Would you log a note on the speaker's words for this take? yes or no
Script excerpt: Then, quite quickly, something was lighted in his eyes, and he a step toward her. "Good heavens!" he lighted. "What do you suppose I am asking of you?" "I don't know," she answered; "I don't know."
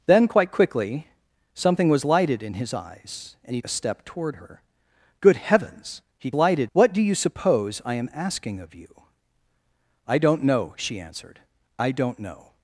no